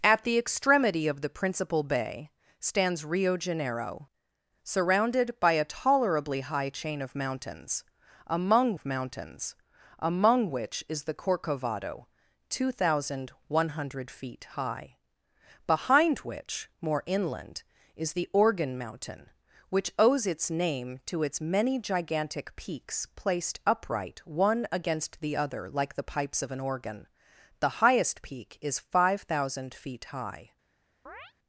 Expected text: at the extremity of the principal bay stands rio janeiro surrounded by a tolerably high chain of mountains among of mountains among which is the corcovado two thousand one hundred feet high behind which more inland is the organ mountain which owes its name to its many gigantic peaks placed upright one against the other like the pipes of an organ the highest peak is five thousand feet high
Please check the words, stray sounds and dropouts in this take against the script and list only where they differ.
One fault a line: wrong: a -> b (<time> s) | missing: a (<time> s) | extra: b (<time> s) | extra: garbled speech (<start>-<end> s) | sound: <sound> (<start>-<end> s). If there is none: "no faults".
sound: chirp (31.1-31.3 s)